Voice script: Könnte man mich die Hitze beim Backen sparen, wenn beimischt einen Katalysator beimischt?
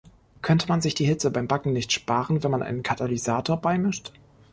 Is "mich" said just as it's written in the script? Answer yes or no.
no